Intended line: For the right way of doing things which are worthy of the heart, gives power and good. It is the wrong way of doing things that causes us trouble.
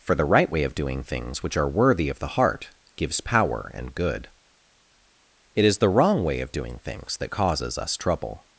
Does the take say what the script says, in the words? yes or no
yes